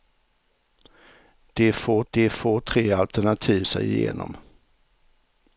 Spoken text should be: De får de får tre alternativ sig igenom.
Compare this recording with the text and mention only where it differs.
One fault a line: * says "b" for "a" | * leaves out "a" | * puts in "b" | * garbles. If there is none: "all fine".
all fine